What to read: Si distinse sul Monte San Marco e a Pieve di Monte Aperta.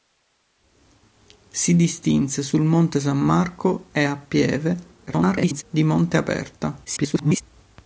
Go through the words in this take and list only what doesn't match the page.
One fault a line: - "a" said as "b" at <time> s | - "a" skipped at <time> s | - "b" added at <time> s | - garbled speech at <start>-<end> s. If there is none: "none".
- garbled speech at 5.1-5.6 s
- garbled speech at 6.8-7.4 s